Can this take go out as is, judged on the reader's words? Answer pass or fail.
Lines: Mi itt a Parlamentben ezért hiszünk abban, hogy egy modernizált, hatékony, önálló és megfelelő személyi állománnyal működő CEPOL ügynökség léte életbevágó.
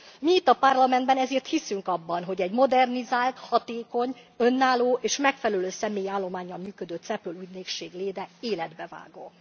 pass